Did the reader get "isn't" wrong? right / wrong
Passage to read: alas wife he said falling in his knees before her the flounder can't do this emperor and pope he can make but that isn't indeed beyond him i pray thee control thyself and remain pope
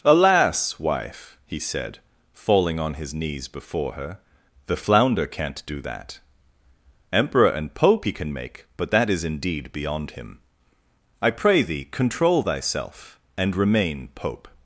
wrong